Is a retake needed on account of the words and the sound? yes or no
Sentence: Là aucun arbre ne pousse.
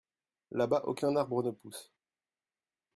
yes